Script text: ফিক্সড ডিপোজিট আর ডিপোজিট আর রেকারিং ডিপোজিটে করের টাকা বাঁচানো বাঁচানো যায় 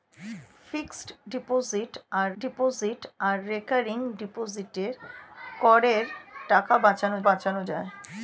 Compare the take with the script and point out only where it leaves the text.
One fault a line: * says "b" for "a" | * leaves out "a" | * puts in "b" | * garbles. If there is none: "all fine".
all fine